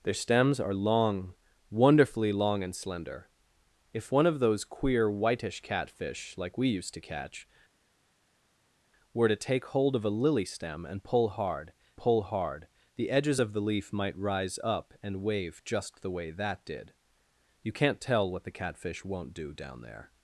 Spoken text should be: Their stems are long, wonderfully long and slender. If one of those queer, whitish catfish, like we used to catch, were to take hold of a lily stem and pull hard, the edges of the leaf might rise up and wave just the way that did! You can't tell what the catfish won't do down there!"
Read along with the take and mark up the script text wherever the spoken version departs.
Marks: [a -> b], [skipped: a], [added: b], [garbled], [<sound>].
Their stems are long, wonderfully long and slender. If one of those queer, whitish catfish, like we used to catch, were to take hold of a lily stem and pull hard, [added: pull hard] the edges of the leaf might rise up and wave just the way that did! You can't tell what the catfish won't do down there!"